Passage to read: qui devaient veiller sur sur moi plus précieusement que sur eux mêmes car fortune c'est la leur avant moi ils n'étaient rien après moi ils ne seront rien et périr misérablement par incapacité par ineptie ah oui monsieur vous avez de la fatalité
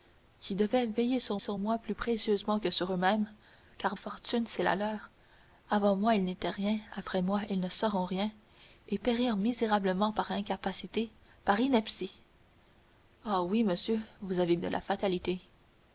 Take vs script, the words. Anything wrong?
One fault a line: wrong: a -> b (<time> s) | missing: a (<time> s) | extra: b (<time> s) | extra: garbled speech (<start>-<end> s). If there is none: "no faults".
no faults